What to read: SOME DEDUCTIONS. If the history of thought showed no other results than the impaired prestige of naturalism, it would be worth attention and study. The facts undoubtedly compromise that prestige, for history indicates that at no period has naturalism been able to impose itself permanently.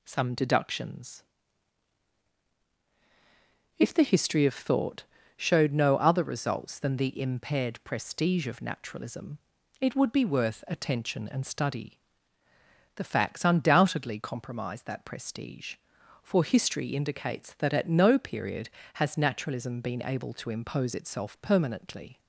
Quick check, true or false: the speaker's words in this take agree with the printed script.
true